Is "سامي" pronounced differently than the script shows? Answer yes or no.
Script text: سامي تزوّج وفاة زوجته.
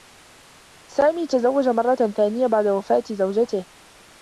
no